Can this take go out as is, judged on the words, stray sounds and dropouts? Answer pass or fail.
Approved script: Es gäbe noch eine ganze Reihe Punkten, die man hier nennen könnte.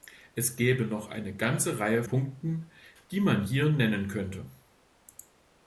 pass